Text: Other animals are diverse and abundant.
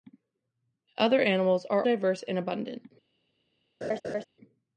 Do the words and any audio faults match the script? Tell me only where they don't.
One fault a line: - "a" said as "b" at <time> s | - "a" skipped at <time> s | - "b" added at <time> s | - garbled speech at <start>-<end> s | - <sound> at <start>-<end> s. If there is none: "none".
- laugh at 3.8-4.2 s